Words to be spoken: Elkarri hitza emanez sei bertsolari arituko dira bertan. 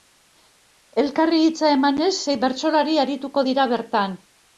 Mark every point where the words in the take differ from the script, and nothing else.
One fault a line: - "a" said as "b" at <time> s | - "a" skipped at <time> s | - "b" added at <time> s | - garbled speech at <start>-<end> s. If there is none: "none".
none